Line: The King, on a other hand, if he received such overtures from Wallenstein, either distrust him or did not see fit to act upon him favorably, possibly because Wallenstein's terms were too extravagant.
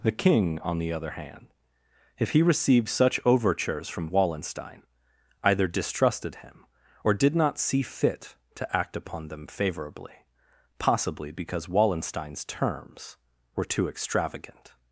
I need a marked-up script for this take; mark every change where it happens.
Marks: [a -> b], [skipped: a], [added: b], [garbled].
The King, on [a -> the] other hand, if he received such overtures from Wallenstein, either [distrust -> distrusted] him or did not see fit to act upon [him -> them] favorably, possibly because Wallenstein's terms were too extravagant.